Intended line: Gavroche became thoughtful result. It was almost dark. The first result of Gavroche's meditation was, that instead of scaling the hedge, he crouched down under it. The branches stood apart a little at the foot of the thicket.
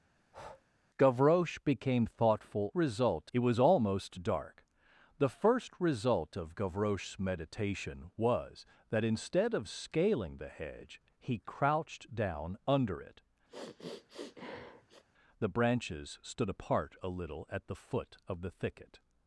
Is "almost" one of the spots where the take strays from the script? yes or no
no